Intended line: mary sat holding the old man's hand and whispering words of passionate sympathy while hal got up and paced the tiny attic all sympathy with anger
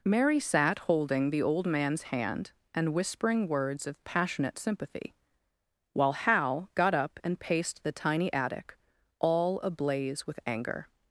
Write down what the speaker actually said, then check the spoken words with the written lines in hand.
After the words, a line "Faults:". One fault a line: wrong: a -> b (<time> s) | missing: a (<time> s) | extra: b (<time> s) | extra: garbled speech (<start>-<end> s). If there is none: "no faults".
mary sat holding the old man's hand and whispering words of passionate sympathy while hal got up and paced the tiny attic all ablaze with anger
Faults:
wrong: sympathy -> ablaze (9.6 s)